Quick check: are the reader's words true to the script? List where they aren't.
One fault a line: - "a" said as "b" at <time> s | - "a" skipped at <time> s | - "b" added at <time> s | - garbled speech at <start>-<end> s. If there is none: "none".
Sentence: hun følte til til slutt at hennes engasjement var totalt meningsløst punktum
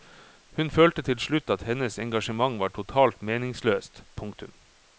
- "til" skipped at 1.2 s